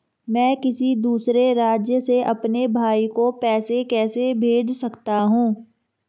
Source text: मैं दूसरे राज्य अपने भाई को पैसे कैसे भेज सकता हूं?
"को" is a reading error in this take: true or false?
false